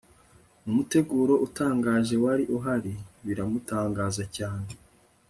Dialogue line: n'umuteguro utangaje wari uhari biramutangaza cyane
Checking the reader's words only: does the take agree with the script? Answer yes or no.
yes